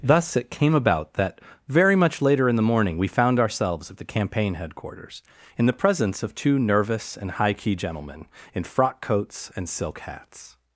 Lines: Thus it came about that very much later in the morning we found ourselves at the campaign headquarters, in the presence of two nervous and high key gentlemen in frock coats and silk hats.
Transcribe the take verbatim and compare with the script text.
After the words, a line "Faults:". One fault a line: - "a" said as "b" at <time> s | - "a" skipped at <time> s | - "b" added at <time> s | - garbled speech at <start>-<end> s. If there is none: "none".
Thus it came about that very much later in the morning we found ourselves at the campaign headquarters, in the presence of two nervous and high key gentlemen in frock coats and silk hats.
Faults:
none